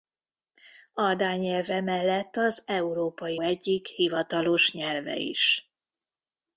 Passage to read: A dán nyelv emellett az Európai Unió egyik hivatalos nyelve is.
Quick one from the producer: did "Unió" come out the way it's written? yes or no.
no